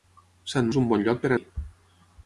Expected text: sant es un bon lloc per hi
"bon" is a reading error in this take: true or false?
false